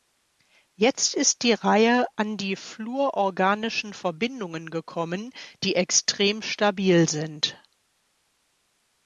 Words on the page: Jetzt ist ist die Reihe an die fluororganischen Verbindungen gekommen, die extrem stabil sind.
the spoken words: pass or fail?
fail